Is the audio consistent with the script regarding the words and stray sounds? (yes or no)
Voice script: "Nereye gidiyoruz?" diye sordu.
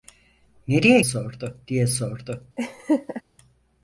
no